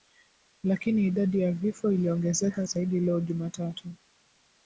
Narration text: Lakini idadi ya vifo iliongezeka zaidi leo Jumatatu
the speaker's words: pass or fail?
pass